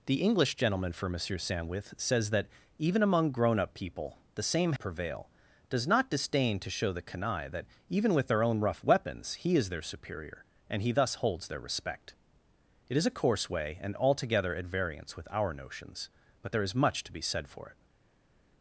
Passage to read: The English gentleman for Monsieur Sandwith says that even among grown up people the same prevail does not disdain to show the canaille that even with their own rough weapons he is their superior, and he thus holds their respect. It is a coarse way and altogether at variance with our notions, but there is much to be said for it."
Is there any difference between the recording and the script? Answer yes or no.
no